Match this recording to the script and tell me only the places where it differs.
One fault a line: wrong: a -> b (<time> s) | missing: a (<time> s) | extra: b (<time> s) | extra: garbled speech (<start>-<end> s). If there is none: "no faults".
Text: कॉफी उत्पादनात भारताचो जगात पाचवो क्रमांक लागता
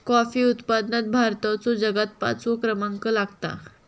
no faults